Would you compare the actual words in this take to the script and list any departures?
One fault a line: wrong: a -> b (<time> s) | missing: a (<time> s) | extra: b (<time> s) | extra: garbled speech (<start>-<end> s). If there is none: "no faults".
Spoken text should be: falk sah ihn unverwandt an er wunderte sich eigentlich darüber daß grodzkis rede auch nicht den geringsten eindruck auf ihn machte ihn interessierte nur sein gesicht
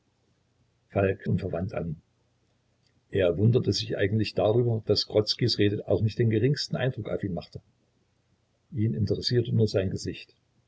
missing: sah ihn (1.3 s)